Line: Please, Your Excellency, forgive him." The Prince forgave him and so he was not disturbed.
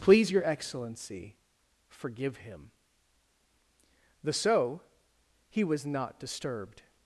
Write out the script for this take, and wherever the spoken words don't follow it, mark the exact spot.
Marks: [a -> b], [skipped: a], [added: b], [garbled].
Please, Your Excellency, forgive him." The [skipped: Prince forgave him and] so he was not disturbed.